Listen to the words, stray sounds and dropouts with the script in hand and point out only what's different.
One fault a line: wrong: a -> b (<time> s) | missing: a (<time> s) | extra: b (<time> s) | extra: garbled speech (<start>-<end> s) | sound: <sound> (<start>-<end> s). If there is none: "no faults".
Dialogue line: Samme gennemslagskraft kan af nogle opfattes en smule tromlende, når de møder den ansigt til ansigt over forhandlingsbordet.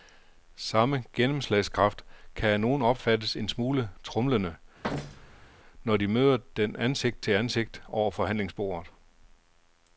sound: thud (4.8-5.5 s)